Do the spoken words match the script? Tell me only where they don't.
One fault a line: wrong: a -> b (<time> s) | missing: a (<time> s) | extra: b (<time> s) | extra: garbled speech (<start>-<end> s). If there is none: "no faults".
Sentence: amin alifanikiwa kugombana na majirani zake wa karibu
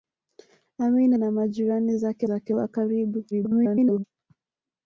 missing: alifanikiwa kugombana (1.1 s)
extra: zake (2.2 s)
extra: garbled speech (3.3-4.0 s)